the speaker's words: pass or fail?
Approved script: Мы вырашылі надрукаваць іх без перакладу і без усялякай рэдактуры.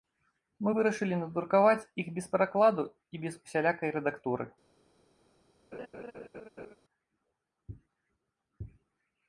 pass